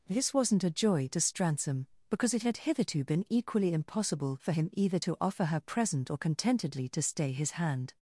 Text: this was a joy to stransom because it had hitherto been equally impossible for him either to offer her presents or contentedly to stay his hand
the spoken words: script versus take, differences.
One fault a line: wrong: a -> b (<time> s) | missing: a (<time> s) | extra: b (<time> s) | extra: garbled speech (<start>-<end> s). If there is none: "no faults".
wrong: was -> wasn't (0.3 s)
wrong: presents -> present (5.6 s)